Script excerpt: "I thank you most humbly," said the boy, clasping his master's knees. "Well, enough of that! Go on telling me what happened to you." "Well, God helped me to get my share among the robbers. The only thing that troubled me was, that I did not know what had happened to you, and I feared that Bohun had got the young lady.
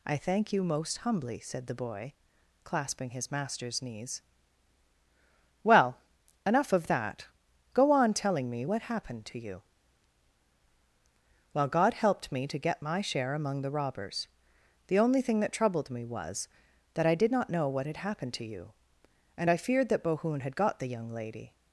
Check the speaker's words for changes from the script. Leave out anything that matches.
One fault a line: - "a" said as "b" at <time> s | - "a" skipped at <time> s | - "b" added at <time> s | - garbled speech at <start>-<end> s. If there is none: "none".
none